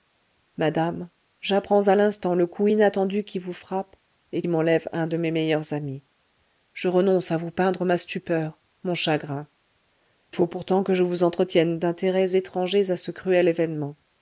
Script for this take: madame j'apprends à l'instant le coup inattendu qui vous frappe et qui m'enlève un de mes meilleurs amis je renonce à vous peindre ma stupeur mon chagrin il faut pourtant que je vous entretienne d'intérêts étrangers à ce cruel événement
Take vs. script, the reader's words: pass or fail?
fail